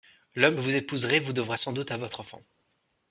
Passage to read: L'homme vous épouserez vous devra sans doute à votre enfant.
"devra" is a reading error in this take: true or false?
false